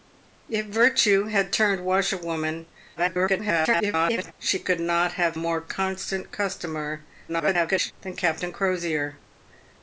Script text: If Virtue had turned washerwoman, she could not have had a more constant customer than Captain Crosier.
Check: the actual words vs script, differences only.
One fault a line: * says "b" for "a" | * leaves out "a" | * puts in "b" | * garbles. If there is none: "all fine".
* garbles
* leaves out "had a"
* garbles